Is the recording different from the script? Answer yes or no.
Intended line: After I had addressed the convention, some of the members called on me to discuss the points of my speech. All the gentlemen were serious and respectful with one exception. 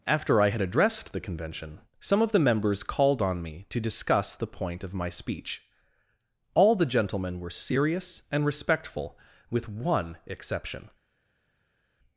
yes